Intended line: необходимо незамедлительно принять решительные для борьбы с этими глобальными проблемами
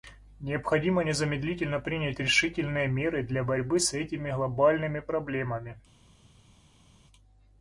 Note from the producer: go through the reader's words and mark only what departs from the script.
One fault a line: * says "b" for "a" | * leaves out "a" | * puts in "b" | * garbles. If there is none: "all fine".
* puts in "меры"